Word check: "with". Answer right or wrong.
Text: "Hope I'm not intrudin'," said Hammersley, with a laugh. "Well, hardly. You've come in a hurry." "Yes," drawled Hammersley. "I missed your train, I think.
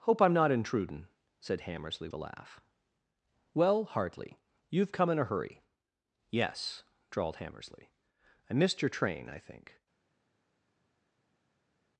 wrong